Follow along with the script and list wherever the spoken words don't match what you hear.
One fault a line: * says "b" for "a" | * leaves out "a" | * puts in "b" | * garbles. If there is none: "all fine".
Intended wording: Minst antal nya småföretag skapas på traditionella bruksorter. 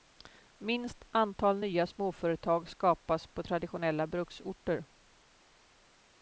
all fine